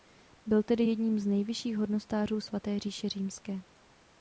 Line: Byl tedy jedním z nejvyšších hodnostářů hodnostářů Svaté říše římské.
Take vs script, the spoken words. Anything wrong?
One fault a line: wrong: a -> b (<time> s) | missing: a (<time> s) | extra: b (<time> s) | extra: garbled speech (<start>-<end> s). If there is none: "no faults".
missing: hodnostářů (2.4 s)